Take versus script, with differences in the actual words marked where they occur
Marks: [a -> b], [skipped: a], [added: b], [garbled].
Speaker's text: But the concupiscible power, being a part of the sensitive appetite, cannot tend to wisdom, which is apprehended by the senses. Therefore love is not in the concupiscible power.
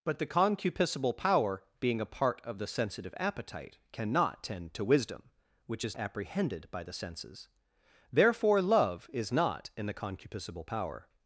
But the concupiscible power, being a part of the sensitive appetite, cannot tend to wisdom, which is apprehended by the senses. Therefore love is not in the concupiscible power.